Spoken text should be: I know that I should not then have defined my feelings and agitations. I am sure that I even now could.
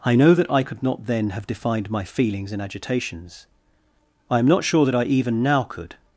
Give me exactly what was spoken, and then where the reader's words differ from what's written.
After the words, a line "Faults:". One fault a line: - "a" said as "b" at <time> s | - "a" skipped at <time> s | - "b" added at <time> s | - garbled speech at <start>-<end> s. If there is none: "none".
I know that I could not then have defined my feelings and agitations. I am not sure that I even now could.
Faults:
- "should" said as "could" at 0.6 s
- "not" added at 4.5 s